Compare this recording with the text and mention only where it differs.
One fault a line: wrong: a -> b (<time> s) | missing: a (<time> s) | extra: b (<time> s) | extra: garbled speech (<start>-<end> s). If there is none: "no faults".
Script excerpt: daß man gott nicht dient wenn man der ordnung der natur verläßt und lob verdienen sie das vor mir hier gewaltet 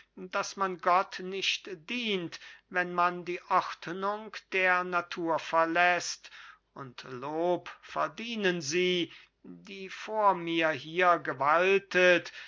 wrong: der -> die (3.2 s)
wrong: das -> die (9.4 s)